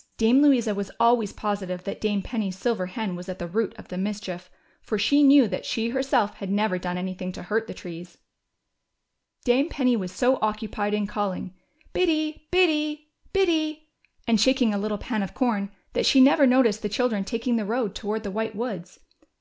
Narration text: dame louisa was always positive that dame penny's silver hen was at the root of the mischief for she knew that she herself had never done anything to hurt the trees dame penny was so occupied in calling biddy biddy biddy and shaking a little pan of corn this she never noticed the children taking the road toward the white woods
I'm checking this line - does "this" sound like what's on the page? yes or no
no